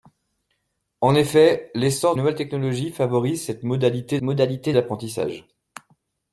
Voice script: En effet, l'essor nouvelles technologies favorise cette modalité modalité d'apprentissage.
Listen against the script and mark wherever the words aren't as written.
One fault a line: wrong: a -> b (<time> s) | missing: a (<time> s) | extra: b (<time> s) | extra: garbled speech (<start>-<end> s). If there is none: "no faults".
no faults